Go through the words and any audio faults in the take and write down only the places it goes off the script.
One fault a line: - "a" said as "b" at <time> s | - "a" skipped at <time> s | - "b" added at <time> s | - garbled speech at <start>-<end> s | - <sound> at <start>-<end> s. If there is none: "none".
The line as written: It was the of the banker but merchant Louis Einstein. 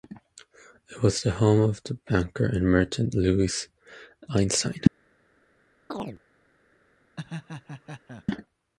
- "home" added at 1.3 s
- "but" said as "and" at 2.5 s
- chirp at 5.9-6.2 s
- laugh at 7.2-8.3 s